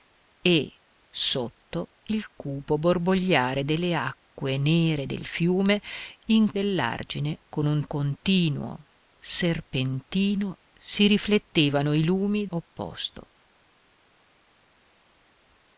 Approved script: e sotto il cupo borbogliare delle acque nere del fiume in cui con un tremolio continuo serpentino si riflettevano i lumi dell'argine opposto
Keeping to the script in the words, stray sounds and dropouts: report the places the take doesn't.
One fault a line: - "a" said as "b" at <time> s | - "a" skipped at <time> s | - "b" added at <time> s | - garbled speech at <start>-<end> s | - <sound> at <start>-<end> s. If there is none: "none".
- "cui" said as "dell'argine" at 6.5 s
- "tremolio" skipped at 7.8 s
- "dell'argine" skipped at 12.5 s